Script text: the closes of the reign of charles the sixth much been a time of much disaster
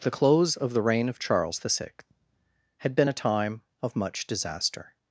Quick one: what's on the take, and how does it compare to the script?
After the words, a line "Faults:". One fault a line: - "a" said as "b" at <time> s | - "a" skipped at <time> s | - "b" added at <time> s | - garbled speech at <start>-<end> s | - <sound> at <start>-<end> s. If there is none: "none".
the close of the reign of charles the sixth had been a time of much disaster
Faults:
- "closes" said as "close" at 0.1 s
- "much" said as "had" at 2.8 s